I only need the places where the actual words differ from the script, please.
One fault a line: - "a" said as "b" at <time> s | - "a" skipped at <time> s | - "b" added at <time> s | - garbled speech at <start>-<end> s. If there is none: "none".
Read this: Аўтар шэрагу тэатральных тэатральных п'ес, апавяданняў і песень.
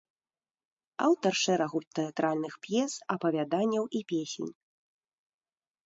- "тэатральных" skipped at 2.5 s